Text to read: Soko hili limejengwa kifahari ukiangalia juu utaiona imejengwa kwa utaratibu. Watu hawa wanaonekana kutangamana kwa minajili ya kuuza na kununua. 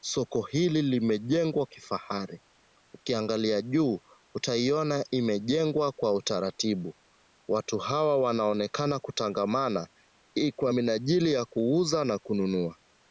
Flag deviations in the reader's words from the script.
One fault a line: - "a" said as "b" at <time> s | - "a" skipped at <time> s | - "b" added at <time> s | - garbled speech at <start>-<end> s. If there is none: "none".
none